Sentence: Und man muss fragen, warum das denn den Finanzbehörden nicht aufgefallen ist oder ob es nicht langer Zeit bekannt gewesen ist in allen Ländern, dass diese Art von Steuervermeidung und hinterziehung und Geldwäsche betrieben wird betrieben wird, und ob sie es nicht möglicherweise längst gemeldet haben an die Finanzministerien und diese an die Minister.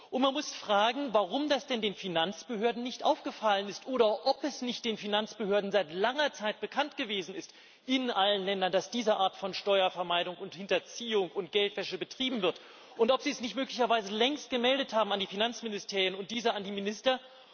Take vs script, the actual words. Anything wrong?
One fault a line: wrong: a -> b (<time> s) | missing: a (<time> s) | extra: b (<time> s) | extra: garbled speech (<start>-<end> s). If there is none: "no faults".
extra: den Finanzbehörden seit (4.8 s)
missing: betrieben wird (12.6 s)